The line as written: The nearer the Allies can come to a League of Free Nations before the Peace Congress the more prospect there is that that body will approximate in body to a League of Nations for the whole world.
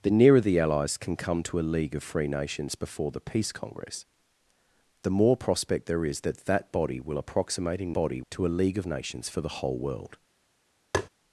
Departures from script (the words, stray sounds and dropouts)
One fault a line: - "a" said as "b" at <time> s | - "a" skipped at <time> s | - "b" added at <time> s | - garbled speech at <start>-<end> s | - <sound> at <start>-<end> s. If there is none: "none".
- tap at 10.9-11.1 s